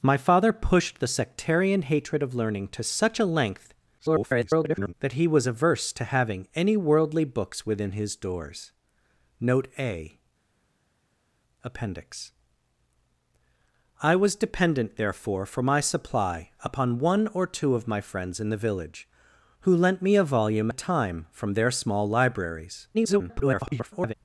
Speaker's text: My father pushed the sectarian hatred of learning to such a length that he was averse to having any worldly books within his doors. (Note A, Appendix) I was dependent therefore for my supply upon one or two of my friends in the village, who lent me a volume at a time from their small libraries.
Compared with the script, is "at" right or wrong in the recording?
wrong